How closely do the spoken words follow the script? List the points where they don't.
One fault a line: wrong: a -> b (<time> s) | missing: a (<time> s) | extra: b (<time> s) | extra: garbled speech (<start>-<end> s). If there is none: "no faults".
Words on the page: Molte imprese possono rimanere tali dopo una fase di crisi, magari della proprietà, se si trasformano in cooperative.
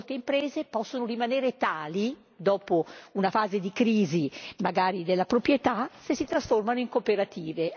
no faults